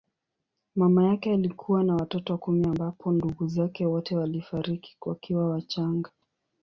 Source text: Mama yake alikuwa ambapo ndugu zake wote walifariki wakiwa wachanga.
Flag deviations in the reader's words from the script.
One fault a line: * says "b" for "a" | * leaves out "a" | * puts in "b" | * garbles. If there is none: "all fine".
* puts in "na watoto kumi"